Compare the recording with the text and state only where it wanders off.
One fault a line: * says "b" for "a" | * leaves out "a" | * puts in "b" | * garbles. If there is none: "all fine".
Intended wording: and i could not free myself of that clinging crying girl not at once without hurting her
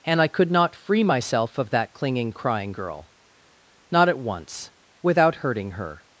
all fine